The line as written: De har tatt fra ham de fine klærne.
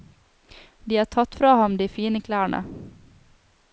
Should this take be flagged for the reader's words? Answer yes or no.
no